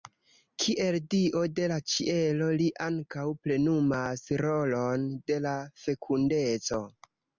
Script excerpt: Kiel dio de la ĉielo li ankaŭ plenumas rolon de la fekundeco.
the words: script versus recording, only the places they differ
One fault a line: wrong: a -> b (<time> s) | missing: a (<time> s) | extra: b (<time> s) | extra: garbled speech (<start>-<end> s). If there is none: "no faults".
no faults